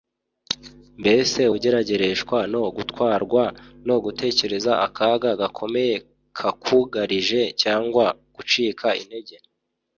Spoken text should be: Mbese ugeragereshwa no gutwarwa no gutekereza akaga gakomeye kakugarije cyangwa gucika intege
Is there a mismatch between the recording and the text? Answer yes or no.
no